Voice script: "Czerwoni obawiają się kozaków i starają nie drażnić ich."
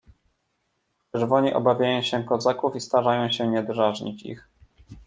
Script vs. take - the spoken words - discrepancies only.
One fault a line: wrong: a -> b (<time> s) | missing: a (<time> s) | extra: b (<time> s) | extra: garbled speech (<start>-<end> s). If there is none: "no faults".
extra: się (3.3 s)